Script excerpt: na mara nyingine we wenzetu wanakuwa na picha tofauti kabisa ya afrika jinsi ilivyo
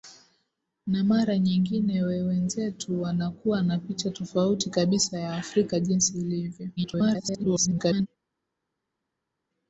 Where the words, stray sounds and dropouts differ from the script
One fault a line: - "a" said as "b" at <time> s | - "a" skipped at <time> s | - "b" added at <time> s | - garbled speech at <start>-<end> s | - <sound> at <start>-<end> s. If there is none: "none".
- garbled speech at 6.8-8.1 s